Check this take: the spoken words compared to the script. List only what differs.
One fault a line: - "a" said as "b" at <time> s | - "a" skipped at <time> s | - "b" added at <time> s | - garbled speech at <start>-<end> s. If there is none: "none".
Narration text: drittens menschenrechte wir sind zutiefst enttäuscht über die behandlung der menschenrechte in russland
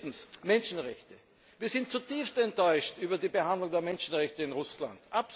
none